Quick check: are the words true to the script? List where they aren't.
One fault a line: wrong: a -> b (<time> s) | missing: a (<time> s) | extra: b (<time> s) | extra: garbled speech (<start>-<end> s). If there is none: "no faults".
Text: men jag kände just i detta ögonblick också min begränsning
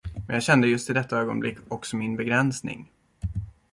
no faults